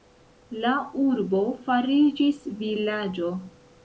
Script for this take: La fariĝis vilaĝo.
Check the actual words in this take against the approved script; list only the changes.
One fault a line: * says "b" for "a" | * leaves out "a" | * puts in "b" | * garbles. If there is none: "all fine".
* puts in "urbo"